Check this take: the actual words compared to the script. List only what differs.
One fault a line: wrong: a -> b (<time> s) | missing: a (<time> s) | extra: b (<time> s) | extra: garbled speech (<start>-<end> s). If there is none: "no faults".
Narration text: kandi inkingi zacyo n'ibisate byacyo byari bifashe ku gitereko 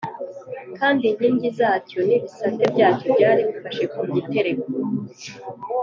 no faults